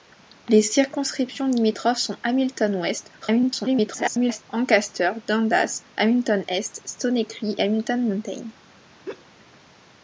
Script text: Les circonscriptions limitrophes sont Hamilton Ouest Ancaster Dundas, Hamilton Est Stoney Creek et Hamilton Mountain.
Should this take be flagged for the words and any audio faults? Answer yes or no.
yes